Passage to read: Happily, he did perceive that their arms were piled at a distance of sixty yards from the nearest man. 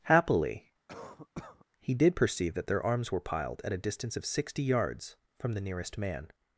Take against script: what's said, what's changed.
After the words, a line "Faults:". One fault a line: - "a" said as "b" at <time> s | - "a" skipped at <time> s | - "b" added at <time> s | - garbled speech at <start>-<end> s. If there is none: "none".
Happily, he did perceive that their arms were piled at a distance of sixty yards from the nearest man.
Faults:
none